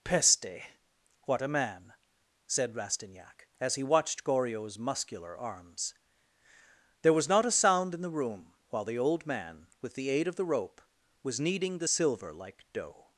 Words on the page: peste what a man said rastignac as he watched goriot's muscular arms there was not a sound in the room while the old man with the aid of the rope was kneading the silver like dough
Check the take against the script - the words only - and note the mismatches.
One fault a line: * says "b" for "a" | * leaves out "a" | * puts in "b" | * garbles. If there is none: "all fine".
all fine